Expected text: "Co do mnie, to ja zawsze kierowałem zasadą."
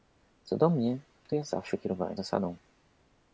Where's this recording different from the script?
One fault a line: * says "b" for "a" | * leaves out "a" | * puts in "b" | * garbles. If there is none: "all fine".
all fine